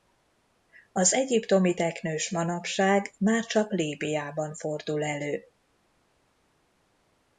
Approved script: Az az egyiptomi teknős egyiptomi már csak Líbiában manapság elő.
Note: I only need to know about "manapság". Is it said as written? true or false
false